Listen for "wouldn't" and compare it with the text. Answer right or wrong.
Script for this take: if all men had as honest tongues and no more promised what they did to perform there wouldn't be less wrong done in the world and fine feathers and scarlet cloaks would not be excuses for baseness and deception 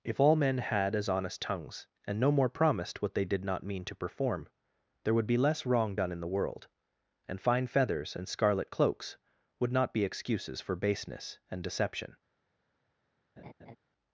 wrong